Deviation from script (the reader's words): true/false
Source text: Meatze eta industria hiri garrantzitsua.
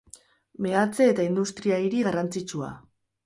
false